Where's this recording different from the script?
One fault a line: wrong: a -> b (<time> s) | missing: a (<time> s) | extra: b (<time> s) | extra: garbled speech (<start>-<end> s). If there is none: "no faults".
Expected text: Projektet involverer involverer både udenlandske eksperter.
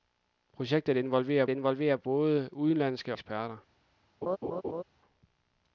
no faults